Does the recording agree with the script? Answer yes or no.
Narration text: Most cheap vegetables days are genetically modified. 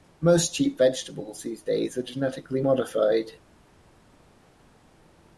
no